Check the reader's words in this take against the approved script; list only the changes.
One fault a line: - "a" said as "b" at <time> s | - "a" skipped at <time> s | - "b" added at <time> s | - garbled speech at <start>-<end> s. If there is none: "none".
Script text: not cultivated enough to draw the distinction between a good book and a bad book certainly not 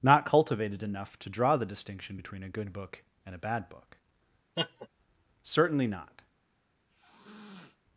none